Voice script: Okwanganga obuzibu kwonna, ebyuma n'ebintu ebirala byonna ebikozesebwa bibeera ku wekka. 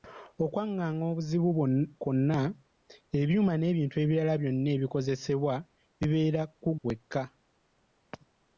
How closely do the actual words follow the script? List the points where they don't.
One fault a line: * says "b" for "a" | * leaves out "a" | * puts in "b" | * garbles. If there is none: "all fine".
all fine